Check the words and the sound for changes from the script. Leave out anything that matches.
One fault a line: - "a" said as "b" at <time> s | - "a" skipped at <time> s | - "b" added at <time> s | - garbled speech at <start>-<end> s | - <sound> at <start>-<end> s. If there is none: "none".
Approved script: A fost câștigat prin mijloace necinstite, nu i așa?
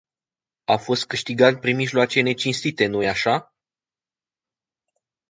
none